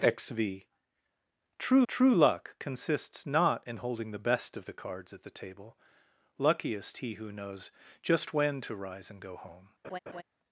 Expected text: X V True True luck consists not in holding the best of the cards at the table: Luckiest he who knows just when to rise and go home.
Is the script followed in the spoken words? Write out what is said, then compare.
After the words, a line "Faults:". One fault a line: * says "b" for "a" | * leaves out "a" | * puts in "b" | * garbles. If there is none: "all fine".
X V True True luck consists not in holding the best of the cards at the table: Luckiest he who knows just when to rise and go home.
Faults:
all fine